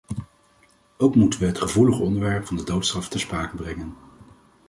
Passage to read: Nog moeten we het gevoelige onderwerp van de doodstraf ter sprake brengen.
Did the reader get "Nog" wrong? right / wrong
wrong